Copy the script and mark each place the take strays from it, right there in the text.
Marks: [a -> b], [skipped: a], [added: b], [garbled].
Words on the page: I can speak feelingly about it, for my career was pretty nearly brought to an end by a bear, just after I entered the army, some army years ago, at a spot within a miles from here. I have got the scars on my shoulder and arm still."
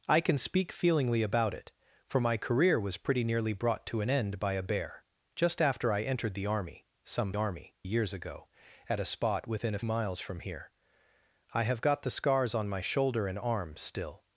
I can speak feelingly about it, for my career was pretty nearly brought to an end by a bear, just after I entered the army, some army years ago, at a spot within a miles from here. I have got the scars on my shoulder and arm still."